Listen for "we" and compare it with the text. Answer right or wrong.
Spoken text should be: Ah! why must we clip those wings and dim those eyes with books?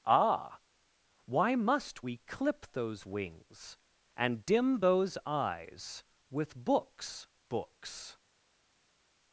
right